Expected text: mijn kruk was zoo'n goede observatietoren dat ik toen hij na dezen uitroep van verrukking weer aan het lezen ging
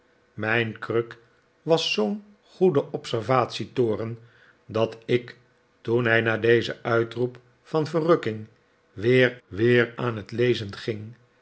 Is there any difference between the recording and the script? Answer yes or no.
yes